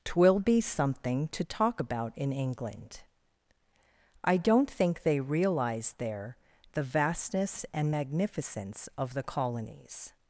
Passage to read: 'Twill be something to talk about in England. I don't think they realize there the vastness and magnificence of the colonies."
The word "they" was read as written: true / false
true